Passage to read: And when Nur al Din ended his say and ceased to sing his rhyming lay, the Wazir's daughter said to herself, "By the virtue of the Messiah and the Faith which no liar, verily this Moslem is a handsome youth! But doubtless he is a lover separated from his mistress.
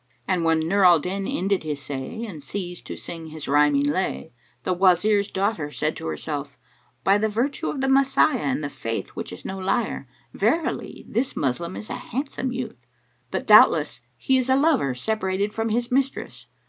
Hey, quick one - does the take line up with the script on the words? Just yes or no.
no